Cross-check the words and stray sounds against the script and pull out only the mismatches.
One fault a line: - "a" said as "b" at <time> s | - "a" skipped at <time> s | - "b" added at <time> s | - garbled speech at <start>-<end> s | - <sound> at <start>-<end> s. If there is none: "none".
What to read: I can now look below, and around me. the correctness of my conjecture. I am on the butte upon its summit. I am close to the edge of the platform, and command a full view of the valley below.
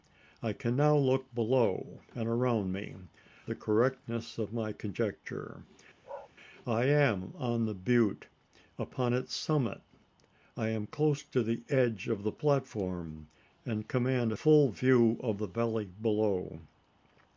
- bark at 6.0-6.3 s